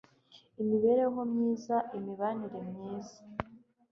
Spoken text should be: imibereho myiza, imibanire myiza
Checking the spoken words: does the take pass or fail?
pass